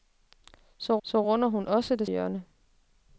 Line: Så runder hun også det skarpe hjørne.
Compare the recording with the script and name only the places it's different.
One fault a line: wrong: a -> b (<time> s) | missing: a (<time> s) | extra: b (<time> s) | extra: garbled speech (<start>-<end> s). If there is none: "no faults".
extra: så (1.0 s)
missing: skarpe (2.1 s)